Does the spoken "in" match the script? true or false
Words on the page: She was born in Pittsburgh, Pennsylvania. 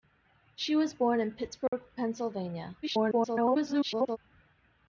true